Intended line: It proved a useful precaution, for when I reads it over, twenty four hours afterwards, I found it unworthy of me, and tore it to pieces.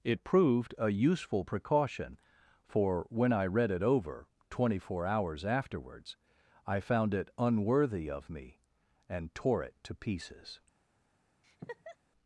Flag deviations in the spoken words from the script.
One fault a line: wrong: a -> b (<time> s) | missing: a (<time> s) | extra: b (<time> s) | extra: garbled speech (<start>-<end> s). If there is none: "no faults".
wrong: reads -> read (3.5 s)